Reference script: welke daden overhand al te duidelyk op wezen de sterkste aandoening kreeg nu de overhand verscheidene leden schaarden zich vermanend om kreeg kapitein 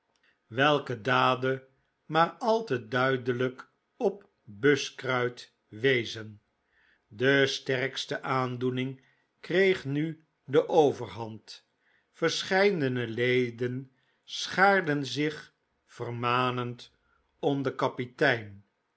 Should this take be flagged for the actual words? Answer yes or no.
yes